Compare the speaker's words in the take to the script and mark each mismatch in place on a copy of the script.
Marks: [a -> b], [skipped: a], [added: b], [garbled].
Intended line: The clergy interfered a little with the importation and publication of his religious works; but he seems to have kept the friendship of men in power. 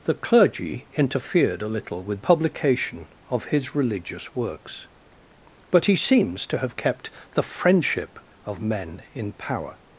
The clergy interfered a little with [skipped: the importation and] publication of his religious works; but he seems to have kept the friendship of men in power.